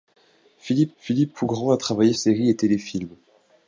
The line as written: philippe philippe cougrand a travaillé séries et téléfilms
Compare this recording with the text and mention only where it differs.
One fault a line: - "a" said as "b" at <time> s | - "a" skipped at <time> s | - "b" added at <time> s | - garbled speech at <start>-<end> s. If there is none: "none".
none